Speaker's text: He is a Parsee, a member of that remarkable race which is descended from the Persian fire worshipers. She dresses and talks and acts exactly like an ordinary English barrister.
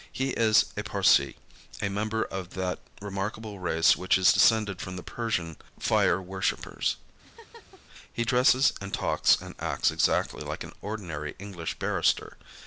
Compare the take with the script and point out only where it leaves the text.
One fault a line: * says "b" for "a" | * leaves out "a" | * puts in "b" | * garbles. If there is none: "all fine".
* says "He" for "She"